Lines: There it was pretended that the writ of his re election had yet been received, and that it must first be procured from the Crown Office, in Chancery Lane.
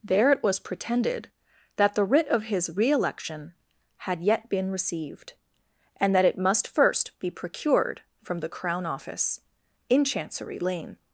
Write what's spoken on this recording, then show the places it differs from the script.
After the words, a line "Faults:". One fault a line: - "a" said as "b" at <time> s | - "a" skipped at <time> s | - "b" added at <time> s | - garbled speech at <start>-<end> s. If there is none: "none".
There it was pretended that the writ of his re election had yet been received, and that it must first be procured from the Crown Office, in Chancery Lane.
Faults:
none